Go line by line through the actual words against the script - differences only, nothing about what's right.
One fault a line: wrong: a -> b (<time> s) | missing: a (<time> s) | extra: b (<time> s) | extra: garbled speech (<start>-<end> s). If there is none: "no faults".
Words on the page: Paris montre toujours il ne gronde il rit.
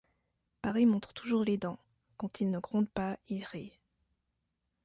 extra: les dents quand (1.4 s)
extra: pas (2.9 s)